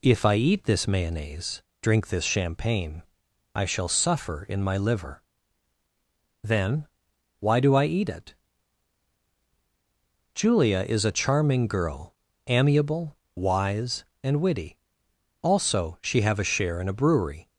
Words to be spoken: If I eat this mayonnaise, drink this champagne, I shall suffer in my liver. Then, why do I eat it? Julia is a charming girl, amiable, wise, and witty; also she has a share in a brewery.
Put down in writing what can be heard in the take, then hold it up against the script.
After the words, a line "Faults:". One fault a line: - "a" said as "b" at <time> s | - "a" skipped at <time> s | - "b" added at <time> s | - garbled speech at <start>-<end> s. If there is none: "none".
If I eat this mayonnaise, drink this champagne, I shall suffer in my liver. Then, why do I eat it? Julia is a charming girl, amiable, wise, and witty; also she have a share in a brewery.
Faults:
- "has" said as "have" at 16.2 s